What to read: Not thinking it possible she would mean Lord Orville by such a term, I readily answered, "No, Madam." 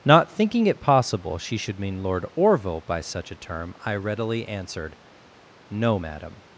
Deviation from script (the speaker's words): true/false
true